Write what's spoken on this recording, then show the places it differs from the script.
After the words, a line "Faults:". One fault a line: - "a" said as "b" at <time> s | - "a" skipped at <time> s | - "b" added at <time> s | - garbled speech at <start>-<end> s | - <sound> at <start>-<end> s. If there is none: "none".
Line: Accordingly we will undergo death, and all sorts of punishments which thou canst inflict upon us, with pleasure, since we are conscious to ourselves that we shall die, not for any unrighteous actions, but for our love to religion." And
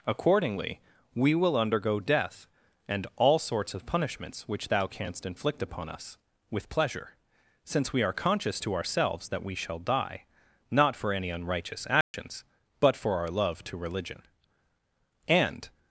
Accordingly we will undergo death, and all sorts of punishments which thou canst inflict upon us, with pleasure, since we are conscious to ourselves that we shall die, not for any unrighteous actions, but for our love to religion." And
Faults:
- dropout at 12.0-12.1 s